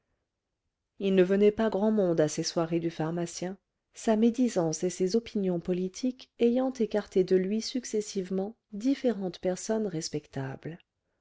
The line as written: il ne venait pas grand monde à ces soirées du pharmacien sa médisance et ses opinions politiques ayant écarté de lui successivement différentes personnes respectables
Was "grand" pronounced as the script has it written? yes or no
yes